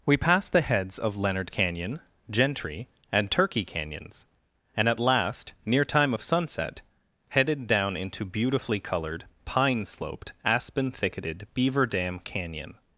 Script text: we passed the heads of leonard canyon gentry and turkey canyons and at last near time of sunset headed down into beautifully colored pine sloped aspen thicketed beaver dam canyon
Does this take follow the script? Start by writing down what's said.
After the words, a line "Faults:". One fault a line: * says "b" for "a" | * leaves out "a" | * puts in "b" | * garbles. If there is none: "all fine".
we passed the heads of leonard canyon gentry and turkey canyons and at last near time of sunset headed down into beautifully colored pine sloped aspen thicketed beaver dam canyon
Faults:
all fine